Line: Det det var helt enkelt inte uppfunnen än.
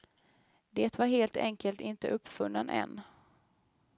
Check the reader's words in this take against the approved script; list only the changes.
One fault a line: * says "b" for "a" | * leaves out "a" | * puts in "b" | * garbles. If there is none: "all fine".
* leaves out "det"